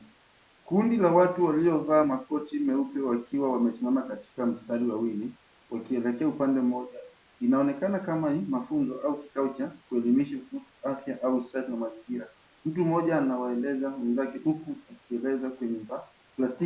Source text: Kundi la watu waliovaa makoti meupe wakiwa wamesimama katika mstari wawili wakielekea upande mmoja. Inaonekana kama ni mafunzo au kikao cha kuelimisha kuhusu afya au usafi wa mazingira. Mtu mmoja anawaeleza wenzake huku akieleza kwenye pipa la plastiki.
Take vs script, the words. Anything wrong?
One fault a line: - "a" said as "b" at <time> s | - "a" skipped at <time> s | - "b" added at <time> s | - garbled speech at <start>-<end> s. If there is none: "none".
- "pipa" skipped at 15.8 s